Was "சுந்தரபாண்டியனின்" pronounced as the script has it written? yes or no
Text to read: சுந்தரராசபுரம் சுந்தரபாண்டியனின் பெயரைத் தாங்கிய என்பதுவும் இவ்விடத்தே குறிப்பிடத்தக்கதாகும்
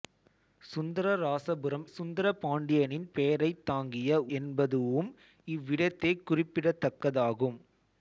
yes